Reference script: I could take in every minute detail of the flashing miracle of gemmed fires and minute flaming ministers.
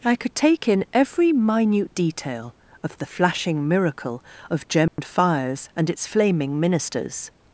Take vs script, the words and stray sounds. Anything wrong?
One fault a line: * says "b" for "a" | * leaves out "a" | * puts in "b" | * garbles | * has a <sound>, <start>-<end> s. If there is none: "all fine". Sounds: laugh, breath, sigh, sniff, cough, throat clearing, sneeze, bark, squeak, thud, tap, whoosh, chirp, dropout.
* has a dropout, 4.9-5.0 s
* says "its" for "minute"